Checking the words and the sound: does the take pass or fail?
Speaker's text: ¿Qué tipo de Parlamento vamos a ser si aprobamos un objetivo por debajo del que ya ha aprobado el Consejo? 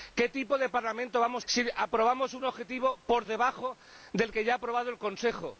fail